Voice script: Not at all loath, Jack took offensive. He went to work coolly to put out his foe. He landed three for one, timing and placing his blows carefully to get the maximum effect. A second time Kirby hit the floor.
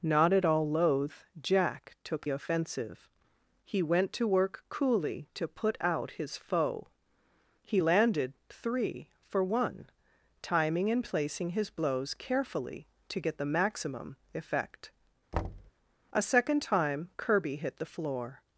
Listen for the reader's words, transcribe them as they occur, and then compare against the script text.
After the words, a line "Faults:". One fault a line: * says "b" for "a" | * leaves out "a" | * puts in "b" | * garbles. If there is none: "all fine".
Not at all loath, Jack took offensive. He went to work coolly to put out his foe. He landed three for one, timing and placing his blows carefully to get the maximum effect. A second time Kirby hit the floor.
Faults:
all fine